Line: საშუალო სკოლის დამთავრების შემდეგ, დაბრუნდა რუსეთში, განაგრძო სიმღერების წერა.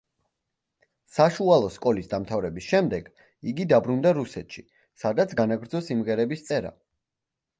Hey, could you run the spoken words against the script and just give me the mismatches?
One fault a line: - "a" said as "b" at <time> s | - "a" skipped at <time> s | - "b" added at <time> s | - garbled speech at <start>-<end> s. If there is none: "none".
- "იგი" added at 3.5 s
- "სადაც" added at 5.0 s